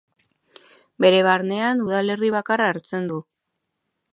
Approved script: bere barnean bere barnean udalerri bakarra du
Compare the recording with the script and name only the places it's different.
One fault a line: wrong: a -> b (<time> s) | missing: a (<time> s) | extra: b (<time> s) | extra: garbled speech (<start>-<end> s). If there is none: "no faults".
missing: bere barnean (1.8 s)
extra: hartzen (2.7 s)